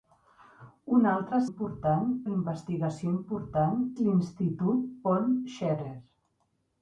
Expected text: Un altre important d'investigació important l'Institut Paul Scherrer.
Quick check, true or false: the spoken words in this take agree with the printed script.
true